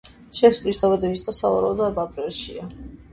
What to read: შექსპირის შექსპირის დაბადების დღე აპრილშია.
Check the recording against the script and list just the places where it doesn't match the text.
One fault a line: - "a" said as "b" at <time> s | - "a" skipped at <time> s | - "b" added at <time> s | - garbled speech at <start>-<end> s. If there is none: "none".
- "შექსპირის" skipped at 0.8 s
- "სავარაუდოდ" added at 1.4 s